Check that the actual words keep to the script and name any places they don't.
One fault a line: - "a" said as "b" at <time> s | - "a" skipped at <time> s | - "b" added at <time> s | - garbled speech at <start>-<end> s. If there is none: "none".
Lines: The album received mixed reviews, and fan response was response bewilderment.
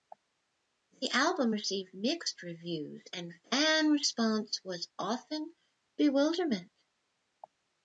- "response" said as "often" at 5.0 s